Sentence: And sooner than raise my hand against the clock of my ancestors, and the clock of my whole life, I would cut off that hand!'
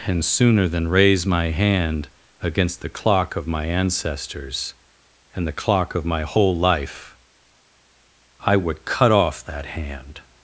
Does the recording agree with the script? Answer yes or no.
yes